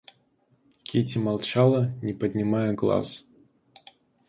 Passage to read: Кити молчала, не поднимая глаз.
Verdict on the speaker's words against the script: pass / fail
pass